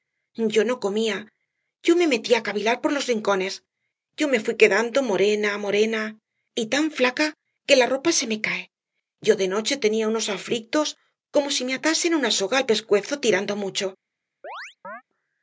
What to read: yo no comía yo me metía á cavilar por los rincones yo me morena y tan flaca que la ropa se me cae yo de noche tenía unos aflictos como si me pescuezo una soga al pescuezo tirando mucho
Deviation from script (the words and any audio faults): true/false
true